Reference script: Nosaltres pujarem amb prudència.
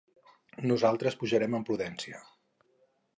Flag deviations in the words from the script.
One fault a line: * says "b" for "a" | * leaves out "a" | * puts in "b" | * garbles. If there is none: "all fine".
all fine